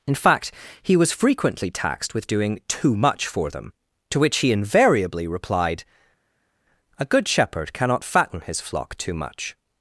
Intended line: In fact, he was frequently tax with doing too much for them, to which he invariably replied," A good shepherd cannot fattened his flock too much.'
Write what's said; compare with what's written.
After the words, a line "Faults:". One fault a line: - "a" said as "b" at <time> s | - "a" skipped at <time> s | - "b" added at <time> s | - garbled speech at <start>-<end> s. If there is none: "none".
In fact, he was frequently taxed with doing too much for them, to which he invariably replied," A good shepherd cannot fatten his flock too much.'
Faults:
- "tax" said as "taxed" at 1.7 s
- "fattened" said as "fatten" at 8.0 s